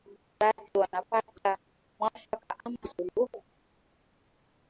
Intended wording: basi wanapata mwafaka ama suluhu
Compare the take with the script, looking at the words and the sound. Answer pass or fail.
pass